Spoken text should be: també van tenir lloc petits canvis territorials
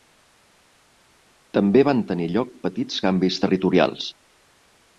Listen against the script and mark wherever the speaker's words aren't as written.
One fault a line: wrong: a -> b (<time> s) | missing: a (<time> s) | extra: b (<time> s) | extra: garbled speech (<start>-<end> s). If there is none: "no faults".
no faults